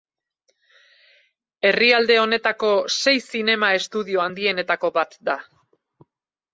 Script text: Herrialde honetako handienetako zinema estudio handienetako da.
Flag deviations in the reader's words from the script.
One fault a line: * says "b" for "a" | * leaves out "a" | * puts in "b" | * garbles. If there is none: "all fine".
* says "sei" for "handienetako"
* puts in "bat"